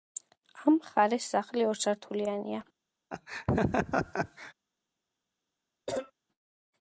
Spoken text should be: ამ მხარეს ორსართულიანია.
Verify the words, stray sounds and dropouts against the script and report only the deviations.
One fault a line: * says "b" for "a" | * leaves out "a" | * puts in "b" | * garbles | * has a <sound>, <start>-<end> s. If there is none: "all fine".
* puts in "სახლი"
* has a laugh, 3.1-4.5 s
* has a cough, 5.9-6.1 s